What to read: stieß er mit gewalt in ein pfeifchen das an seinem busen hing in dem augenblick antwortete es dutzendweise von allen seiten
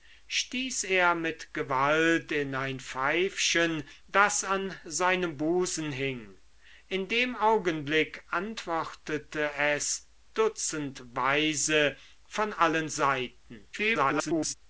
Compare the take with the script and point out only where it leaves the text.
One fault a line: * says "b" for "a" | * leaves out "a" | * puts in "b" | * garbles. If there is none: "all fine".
* garbles